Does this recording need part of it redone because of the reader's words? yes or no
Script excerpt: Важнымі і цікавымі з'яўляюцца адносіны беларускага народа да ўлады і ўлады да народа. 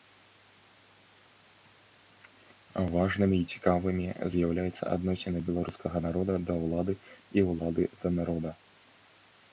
no